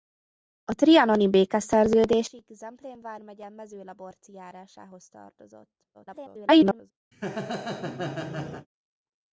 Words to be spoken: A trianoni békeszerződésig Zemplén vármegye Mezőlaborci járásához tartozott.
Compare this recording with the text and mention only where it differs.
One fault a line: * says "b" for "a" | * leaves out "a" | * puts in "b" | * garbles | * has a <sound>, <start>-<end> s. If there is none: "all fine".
* garbles
* has a laugh, 7.1-8.7 s